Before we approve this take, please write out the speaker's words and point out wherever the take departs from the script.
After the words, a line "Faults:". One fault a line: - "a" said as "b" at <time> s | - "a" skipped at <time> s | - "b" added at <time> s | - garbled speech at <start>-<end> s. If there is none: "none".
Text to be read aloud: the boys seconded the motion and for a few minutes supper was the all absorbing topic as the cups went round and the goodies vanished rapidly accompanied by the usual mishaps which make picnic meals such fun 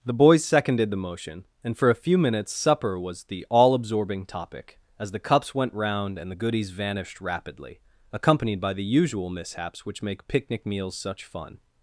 the boys seconded the motion and for a few minutes supper was the all absorbing topic as the cups went round and the goodies vanished rapidly accompanied by the usual mishaps which make picnic meals such fun
Faults:
none